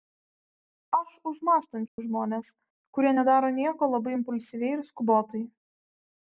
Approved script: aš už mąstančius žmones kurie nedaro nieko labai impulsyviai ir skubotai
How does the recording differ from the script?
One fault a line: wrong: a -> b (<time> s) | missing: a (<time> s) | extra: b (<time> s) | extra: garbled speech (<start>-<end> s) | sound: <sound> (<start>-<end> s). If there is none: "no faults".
sound: dropout (1.9-2.0 s)